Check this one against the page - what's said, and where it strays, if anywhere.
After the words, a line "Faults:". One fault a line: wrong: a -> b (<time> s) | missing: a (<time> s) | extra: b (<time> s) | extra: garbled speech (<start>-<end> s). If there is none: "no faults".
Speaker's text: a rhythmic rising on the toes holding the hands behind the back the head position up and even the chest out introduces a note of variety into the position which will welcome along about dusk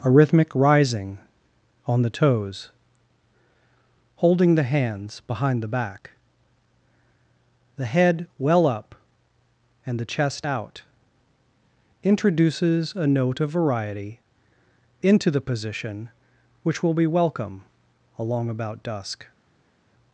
a rhythmic rising on the toes holding the hands behind the back the head well up and the chest out introduces a note of variety into the position which will be welcome along about dusk
Faults:
wrong: position -> well (8.4 s)
missing: even (10.0 s)
extra: be (16.9 s)